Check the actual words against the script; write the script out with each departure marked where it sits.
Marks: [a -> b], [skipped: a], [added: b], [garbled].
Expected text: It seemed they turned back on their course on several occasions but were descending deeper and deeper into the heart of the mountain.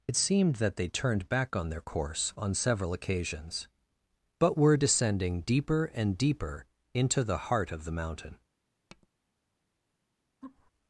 It seemed [added: that] they turned back on their course on several occasions but were descending deeper and deeper into the heart of the mountain.